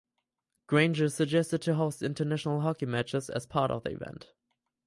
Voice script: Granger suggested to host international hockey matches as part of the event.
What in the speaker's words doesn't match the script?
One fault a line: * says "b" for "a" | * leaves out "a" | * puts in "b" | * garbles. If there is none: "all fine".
all fine